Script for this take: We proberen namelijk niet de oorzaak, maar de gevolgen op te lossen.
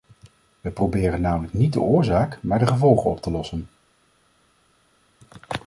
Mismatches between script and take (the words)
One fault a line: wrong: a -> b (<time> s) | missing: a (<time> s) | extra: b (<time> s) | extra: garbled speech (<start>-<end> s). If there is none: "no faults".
no faults